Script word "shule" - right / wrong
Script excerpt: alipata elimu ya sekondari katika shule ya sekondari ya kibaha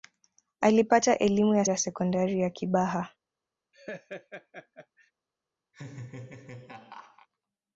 wrong